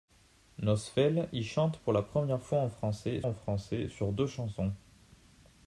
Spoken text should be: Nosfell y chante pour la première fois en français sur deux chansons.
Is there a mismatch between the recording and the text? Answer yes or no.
yes